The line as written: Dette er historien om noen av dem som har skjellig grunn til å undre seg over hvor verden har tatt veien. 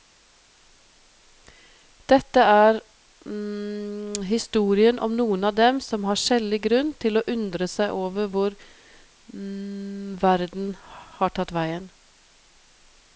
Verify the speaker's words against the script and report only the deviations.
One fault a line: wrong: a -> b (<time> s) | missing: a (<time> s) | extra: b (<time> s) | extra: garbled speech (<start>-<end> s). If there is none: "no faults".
no faults